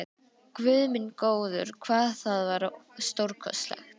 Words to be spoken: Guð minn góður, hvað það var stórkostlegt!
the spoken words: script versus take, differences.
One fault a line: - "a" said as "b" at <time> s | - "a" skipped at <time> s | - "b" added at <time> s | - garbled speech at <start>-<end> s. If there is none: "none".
none